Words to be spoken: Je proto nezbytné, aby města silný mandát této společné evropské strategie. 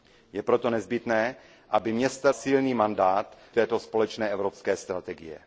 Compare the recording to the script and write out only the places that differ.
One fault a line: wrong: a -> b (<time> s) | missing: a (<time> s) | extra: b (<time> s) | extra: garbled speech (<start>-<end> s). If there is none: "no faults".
no faults